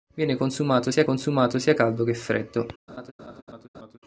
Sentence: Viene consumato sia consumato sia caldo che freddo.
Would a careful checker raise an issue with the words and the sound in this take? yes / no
yes